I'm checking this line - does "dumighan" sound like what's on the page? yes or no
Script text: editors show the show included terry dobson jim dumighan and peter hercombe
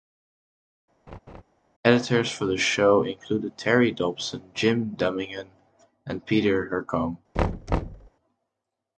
yes